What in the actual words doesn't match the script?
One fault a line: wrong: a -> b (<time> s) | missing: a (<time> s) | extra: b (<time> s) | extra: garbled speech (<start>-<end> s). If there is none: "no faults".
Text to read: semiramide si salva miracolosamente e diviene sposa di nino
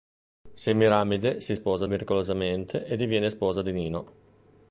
wrong: salva -> sposa (1.5 s)